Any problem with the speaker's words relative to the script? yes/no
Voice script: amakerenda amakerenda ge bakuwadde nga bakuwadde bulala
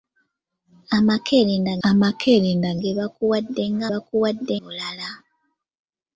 no